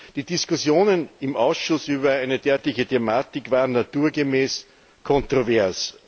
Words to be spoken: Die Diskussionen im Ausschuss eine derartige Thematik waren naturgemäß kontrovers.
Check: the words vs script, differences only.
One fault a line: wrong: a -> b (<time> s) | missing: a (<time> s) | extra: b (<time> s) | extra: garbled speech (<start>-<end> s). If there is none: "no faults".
extra: über (1.9 s)